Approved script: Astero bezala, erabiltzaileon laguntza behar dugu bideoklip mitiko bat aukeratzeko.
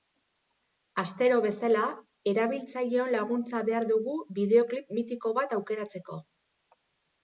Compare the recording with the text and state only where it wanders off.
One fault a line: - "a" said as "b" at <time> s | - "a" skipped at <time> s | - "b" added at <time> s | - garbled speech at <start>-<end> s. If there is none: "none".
none